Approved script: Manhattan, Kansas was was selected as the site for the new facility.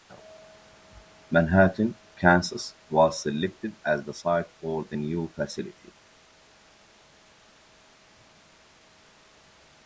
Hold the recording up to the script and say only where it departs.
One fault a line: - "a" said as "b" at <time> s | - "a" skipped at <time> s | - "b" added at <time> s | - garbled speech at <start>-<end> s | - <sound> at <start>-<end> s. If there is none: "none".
- "was" skipped at 3.2 s